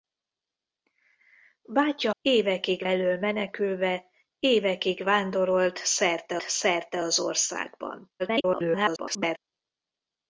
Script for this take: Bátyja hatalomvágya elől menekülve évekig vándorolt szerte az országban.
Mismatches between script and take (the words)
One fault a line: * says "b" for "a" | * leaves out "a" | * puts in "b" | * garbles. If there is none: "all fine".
* says "évekig" for "hatalomvágya"
* puts in "szerte"
* garbles